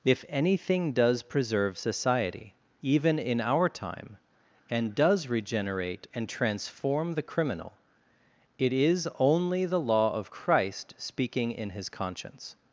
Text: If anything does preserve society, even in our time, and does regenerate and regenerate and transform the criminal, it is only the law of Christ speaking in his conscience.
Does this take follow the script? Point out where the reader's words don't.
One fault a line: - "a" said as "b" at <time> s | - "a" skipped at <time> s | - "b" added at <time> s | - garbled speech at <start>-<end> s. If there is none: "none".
- "regenerate and" skipped at 6.3 s